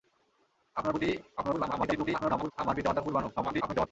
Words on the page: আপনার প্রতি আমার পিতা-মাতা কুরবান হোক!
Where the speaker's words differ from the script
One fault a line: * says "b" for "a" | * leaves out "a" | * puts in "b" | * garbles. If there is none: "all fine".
* garbles
* garbles